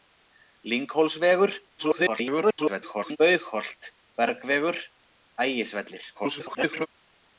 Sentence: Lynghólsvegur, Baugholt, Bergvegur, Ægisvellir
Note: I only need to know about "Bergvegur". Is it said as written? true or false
true